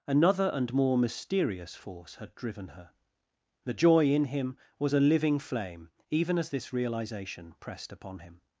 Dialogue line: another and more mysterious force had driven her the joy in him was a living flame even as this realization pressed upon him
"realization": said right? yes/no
yes